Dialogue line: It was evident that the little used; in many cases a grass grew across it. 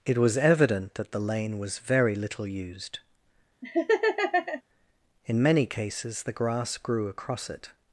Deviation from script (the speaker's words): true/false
true